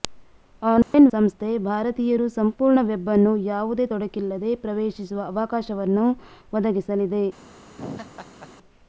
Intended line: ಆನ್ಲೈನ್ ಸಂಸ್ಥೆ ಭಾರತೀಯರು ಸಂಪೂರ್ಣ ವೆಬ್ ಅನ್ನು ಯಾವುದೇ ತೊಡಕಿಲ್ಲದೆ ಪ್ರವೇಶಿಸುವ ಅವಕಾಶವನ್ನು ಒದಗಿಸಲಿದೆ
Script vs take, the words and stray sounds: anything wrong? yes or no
yes